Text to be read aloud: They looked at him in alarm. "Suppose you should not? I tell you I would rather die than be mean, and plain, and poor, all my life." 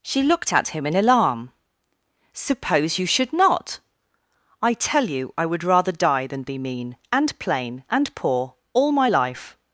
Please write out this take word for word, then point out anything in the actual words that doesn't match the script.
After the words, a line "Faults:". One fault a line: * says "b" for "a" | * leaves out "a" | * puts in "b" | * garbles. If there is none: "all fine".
She looked at him in alarm. "Suppose you should not? I tell you I would rather die than be mean, and plain, and poor, all my life."
Faults:
* says "She" for "They"